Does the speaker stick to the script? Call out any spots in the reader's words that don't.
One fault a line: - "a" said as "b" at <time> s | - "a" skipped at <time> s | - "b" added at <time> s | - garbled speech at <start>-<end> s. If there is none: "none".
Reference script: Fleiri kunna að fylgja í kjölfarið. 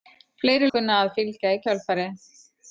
none